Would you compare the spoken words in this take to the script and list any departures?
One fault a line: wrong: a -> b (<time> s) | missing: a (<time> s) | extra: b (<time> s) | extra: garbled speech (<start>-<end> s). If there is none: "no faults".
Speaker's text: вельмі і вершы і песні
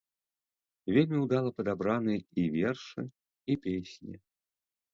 extra: ўдала падабраны (1.2 s)